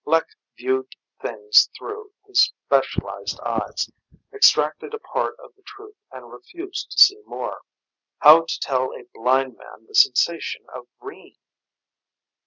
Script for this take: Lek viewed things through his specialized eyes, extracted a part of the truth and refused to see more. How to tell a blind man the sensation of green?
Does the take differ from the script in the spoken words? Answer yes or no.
no